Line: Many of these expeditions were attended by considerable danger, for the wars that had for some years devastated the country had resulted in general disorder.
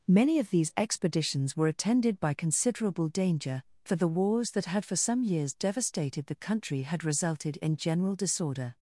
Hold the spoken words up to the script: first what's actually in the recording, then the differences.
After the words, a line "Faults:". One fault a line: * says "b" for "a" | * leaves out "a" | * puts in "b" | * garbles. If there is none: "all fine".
Many of these expeditions were attended by considerable danger, for the wars that had for some years devastated the country had resulted in general disorder.
Faults:
all fine